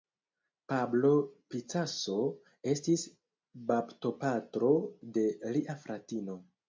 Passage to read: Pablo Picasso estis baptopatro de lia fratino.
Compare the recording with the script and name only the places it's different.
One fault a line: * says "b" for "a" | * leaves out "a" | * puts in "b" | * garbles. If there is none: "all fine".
all fine